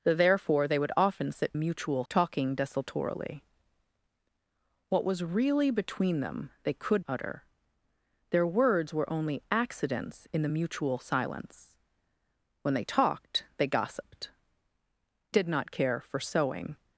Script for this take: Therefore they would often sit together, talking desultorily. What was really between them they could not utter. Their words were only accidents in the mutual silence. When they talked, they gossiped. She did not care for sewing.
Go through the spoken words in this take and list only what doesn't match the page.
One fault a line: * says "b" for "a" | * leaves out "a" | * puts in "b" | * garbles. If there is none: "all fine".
* says "mutual" for "together"
* leaves out "not"
* leaves out "She"